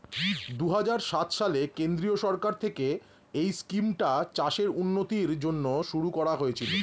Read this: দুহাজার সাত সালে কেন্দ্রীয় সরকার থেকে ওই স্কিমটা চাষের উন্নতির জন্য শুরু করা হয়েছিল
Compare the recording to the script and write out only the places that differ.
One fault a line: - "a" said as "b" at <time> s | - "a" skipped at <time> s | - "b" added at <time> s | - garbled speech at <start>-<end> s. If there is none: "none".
- "ওই" said as "এই" at 3.3 s